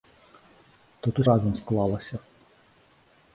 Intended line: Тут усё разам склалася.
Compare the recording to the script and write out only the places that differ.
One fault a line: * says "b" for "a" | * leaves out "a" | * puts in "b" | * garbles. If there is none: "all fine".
* leaves out "усё"